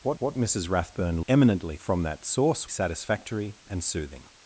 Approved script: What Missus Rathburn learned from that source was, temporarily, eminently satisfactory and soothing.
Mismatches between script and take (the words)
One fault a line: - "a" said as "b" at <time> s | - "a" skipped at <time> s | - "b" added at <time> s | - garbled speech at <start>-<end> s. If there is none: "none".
- "what" added at 0.2 s
- "learned" said as "eminently" at 1.3 s
- "was temporarily eminently" skipped at 2.7 s